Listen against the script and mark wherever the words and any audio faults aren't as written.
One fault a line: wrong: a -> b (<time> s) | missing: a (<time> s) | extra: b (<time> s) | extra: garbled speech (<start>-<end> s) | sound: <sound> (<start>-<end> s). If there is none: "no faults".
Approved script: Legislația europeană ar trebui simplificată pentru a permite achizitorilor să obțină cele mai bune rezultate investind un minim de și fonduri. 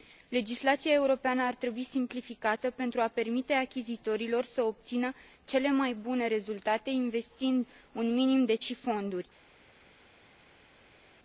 no faults